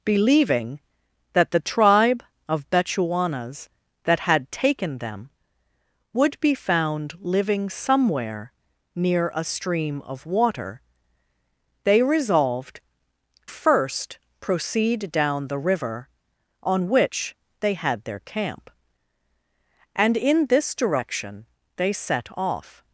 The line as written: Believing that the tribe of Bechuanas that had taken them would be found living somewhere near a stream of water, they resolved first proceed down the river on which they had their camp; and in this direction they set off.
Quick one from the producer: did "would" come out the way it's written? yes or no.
yes